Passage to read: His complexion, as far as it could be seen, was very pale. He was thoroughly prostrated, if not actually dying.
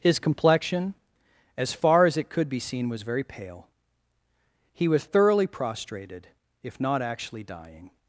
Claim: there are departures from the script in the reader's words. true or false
false